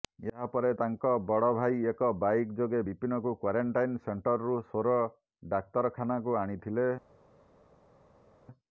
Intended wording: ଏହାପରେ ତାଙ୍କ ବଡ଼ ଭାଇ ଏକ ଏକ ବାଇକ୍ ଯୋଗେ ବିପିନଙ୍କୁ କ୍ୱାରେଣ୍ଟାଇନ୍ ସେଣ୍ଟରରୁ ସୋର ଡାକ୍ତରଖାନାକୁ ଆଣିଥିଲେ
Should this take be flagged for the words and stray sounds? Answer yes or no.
yes